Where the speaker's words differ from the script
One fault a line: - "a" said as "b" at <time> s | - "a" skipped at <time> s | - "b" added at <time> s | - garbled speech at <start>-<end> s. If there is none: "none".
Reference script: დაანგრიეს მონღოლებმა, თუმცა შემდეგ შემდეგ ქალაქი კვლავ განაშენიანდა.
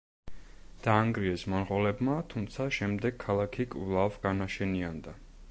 - "შემდეგ" skipped at 3.2 s